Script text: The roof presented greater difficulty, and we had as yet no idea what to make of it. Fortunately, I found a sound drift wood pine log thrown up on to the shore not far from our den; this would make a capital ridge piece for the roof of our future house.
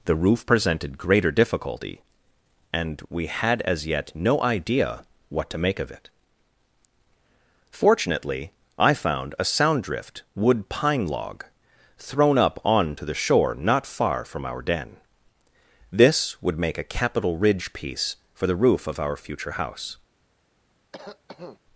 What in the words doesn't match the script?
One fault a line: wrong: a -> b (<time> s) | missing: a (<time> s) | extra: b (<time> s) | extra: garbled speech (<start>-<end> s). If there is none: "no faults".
no faults